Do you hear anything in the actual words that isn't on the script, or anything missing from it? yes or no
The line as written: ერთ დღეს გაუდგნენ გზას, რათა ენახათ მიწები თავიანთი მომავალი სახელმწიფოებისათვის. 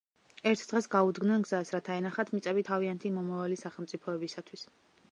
no